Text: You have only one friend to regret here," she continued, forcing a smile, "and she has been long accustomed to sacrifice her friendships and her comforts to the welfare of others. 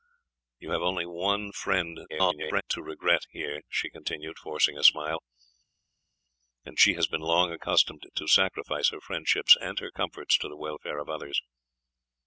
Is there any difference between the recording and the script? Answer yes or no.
yes